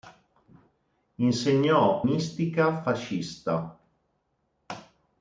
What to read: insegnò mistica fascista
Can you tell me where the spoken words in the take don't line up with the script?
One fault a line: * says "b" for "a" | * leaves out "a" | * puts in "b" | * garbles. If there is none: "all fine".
all fine